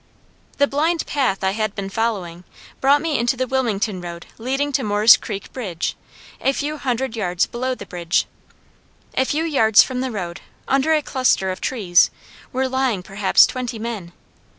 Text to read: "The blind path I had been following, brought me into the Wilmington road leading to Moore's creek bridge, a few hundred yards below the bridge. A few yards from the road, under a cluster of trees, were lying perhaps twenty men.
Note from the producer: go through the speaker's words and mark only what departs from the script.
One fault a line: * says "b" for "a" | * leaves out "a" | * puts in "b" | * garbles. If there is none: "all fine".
all fine